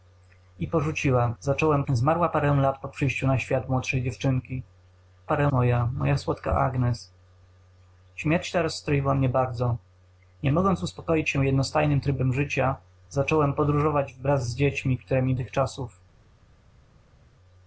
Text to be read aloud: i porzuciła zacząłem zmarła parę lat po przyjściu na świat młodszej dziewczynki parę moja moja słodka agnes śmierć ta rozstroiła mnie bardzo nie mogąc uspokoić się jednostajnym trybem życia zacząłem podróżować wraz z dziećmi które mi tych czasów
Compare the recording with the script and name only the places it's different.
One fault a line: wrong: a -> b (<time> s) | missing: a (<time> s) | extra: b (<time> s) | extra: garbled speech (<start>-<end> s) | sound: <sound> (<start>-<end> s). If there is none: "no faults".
no faults